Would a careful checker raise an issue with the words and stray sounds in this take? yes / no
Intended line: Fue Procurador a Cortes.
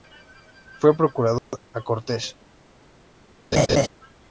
yes